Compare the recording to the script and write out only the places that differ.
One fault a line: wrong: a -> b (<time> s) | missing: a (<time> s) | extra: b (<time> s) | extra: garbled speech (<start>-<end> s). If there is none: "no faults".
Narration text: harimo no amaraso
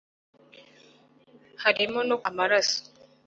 no faults